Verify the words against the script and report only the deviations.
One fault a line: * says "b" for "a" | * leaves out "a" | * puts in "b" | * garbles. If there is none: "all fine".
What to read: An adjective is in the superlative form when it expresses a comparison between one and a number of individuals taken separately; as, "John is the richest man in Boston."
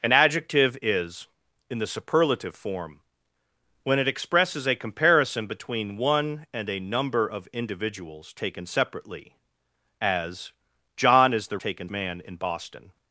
* says "taken" for "richest"